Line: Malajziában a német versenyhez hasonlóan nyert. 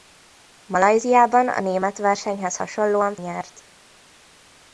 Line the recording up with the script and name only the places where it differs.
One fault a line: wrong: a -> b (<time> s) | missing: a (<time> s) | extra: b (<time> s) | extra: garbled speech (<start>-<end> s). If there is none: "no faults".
no faults